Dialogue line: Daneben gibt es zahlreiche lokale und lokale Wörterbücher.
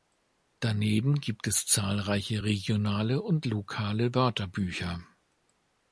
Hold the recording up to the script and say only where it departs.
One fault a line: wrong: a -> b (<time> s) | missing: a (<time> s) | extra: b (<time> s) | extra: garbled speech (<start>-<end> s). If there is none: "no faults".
wrong: lokale -> regionale (2.4 s)